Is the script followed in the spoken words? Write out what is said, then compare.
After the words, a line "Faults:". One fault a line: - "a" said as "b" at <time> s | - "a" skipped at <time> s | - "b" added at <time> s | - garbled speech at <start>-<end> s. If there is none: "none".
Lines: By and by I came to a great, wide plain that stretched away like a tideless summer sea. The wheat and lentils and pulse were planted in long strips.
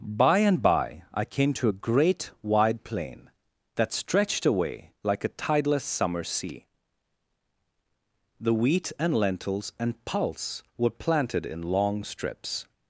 By and by I came to a great, wide plain that stretched away like a tideless summer sea. The wheat and lentils and pulse were planted in long strips.
Faults:
none